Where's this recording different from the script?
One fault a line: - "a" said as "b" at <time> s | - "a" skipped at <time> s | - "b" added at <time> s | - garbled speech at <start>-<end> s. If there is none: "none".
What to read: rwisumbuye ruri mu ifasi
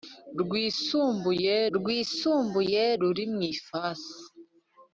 - "rwisumbuye" added at 1.8 s